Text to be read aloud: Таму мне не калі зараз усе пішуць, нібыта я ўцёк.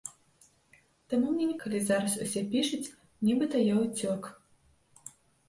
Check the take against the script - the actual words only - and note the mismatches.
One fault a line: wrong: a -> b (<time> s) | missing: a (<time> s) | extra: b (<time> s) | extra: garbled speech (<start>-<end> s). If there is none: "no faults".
no faults